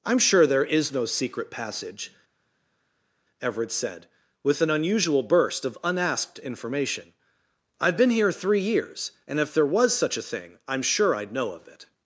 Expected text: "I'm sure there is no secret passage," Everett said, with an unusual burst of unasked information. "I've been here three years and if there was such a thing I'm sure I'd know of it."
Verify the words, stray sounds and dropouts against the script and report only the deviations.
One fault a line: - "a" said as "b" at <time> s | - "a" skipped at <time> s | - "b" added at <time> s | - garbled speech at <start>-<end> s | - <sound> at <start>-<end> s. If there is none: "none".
none